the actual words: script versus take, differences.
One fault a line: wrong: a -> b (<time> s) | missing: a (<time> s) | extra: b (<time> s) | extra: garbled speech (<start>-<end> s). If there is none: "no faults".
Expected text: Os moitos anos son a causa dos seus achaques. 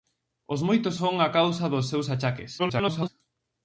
missing: anos (1.0 s)
extra: garbled speech (2.6-3.1 s)